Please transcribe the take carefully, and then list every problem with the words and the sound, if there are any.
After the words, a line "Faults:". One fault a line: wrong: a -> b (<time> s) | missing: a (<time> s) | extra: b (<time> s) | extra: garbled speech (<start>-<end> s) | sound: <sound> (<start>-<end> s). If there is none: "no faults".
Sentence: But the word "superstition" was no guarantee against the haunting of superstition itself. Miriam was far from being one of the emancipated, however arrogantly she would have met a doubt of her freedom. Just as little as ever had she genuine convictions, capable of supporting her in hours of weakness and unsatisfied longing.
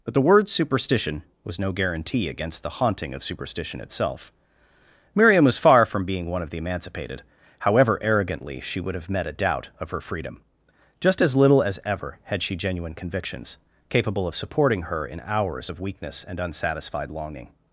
But the word "superstition" was no guarantee against the haunting of superstition itself. Miriam was far from being one of the emancipated, however arrogantly she would have met a doubt of her freedom. Just as little as ever had she genuine convictions, capable of supporting her in hours of weakness and unsatisfied longing.
Faults:
no faults